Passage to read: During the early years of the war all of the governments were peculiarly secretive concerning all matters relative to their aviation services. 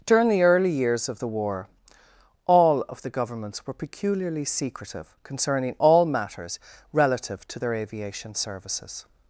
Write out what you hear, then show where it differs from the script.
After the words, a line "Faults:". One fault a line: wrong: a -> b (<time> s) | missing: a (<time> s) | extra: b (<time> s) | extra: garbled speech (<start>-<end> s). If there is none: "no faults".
During the early years of the war all of the governments were peculiarly secretive concerning all matters relative to their aviation services.
Faults:
no faults